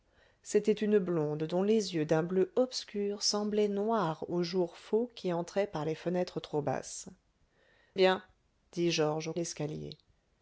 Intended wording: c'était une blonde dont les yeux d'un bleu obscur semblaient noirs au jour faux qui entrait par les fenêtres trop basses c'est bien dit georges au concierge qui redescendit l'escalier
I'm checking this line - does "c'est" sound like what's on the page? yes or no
no